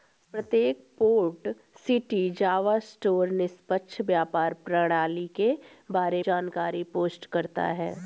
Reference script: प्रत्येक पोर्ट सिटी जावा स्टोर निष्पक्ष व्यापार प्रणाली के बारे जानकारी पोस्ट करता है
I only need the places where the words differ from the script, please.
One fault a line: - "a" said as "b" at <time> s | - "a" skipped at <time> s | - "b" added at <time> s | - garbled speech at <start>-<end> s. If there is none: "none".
none